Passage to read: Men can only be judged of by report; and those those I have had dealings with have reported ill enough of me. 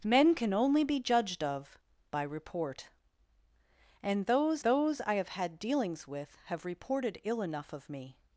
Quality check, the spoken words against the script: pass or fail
pass